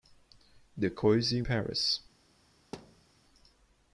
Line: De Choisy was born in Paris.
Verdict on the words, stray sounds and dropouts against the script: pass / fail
fail